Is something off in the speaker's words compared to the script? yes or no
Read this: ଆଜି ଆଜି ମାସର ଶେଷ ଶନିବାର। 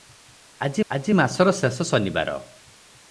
no